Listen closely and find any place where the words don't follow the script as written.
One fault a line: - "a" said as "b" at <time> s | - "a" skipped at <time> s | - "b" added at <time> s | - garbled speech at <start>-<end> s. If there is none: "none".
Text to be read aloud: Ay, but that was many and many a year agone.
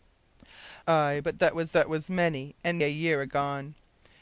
- "that was" added at 1.7 s
- "many" skipped at 2.8 s